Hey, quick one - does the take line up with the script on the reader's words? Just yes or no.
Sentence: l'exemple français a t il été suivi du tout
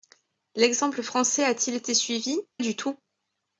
yes